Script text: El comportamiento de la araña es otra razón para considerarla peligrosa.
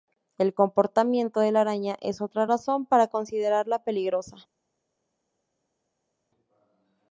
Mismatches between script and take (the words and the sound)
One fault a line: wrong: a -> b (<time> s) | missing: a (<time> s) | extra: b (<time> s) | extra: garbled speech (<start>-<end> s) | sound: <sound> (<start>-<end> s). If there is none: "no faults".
no faults